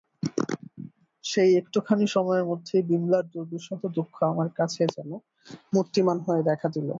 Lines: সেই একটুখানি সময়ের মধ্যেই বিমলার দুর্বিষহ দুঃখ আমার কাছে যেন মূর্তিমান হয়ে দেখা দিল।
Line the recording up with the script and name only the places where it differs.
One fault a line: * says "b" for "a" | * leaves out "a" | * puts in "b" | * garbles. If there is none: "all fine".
all fine